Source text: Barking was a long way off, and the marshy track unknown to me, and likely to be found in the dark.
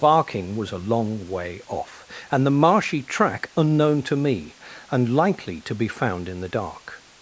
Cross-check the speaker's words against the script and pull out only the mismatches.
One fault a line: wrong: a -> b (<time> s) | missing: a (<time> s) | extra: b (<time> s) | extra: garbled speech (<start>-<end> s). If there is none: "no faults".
no faults